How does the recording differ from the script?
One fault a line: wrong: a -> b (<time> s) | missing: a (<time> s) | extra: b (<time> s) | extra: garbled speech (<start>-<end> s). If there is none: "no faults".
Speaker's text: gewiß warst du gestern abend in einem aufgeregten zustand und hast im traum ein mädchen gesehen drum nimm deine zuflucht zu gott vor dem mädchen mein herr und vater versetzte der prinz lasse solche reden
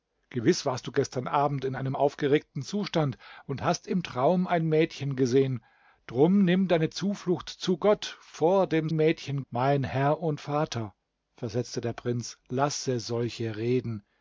no faults